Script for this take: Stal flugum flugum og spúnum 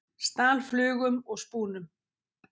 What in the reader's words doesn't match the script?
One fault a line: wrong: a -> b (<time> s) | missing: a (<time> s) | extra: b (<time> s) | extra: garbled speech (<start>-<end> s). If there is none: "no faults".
missing: flugum (1.2 s)